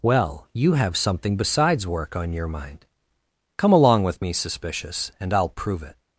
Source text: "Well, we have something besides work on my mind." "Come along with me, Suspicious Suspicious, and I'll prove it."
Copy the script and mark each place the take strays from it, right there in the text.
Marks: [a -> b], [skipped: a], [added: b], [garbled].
"Well, [we -> you] have something besides work on [my -> your] mind." "Come along with me, Suspicious [skipped: Suspicious,] and I'll prove it."